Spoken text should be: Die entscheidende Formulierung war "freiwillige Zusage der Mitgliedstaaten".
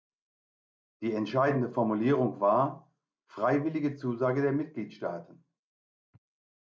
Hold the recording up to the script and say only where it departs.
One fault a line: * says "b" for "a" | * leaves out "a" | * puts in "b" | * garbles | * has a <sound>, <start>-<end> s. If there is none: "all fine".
all fine